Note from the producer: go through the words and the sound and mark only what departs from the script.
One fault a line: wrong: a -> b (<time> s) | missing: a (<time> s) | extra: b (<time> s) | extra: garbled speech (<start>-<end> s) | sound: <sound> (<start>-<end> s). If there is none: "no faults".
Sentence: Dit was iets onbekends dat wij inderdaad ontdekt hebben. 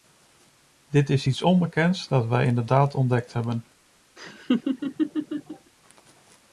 wrong: was -> is (1.1 s)
sound: laugh (4.2-5.7 s)